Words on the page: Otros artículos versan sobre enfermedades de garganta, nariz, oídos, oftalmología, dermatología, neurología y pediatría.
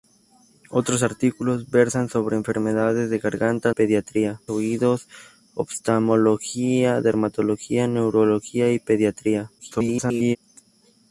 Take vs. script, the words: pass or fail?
fail